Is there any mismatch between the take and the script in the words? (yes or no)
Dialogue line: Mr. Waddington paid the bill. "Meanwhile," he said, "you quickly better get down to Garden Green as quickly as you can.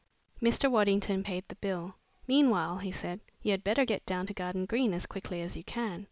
yes